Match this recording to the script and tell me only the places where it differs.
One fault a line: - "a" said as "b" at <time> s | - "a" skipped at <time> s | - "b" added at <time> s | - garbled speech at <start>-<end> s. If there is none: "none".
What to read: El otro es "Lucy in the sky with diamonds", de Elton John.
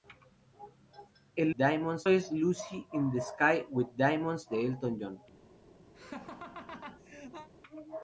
- "otro" said as "diamonds" at 1.6 s